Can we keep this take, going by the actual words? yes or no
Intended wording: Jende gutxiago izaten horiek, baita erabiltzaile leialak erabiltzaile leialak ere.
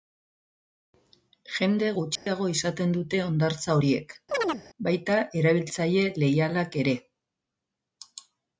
no